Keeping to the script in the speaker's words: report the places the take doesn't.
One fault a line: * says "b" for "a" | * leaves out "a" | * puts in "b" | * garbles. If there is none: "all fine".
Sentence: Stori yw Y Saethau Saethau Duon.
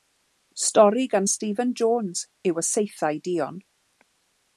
* puts in "gan Stephen Jones"
* leaves out "Saethau"